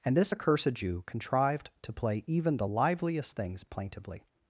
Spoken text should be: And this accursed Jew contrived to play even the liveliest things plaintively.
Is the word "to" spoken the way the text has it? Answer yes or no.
yes